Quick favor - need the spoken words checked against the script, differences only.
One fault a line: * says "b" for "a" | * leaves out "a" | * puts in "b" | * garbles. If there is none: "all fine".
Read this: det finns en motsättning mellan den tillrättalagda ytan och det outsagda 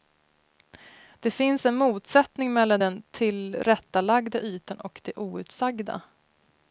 all fine